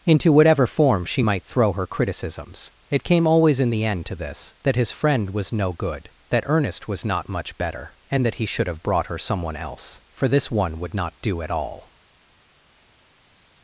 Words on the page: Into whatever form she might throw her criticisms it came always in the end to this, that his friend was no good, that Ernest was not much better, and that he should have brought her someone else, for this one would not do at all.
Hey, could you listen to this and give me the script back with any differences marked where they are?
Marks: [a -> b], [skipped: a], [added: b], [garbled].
Into whatever form she might throw her criticisms it came always in the end to this, that his friend was no good, that Ernest was not much better, and that he should have brought her someone else, for this one would not do at all.